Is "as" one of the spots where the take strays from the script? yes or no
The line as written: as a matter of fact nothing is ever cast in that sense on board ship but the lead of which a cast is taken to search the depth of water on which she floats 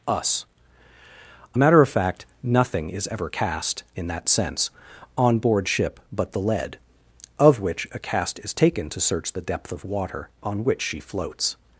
yes